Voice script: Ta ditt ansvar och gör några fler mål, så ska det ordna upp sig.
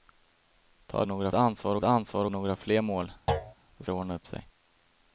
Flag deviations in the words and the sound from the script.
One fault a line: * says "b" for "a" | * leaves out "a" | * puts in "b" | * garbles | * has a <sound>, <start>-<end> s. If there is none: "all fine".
* says "några" for "ditt"
* says "ansvar" for "gör"
* has a thud, 3.3-3.5 s
* leaves out "ska"